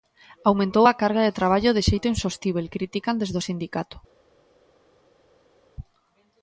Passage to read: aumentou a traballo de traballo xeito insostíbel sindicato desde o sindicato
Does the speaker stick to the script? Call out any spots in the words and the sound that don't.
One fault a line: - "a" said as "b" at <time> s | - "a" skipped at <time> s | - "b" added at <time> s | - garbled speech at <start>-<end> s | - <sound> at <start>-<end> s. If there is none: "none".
- "traballo" said as "carga" at 1.0 s
- "de" added at 1.7 s
- "sindicato" said as "critican" at 2.8 s